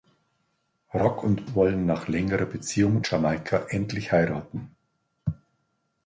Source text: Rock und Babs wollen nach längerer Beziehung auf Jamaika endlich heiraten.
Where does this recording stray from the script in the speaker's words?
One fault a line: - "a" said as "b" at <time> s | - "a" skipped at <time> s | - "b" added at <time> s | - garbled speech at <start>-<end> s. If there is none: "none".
- "Babs" skipped at 1.4 s
- "auf" skipped at 3.0 s